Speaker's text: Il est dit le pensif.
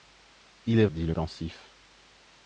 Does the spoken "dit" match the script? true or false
true